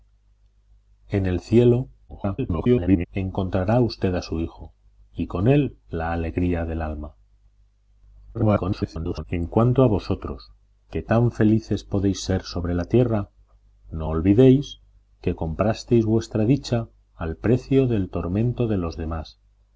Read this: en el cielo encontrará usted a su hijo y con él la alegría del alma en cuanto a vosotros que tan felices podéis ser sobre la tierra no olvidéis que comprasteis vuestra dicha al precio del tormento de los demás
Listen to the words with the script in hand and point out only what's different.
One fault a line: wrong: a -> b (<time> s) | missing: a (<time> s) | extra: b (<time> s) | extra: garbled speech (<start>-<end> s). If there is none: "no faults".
extra: garbled speech (2.1-3.1 s)
extra: garbled speech (8.3-9.2 s)